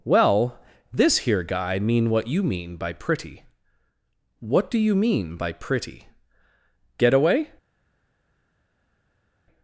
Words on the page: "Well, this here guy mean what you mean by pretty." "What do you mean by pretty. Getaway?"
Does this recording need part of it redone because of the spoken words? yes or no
no